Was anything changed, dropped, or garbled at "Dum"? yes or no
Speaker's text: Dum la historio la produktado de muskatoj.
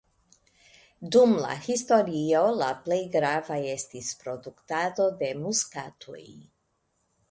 no